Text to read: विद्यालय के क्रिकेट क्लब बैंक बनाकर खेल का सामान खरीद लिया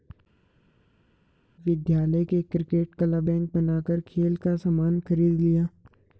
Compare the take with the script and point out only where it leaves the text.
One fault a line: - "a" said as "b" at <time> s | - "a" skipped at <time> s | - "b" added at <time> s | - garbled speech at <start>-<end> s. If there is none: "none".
none